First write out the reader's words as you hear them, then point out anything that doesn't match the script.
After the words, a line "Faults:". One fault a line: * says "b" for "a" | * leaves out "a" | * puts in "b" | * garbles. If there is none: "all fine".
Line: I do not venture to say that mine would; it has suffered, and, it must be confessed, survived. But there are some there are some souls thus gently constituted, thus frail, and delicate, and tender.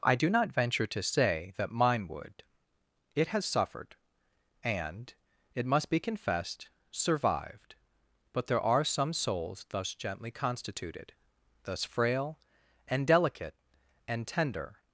I do not venture to say that mine would; it has suffered, and, it must be confessed, survived. But there are some souls thus gently constituted, thus frail, and delicate, and tender.
Faults:
* leaves out "there are some"